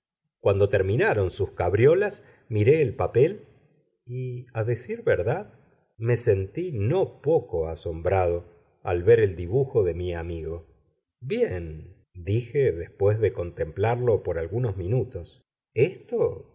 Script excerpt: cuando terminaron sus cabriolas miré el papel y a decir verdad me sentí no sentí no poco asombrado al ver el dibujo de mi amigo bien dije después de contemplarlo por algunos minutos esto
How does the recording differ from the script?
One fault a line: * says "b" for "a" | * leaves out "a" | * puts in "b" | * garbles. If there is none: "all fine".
* leaves out "sentí no"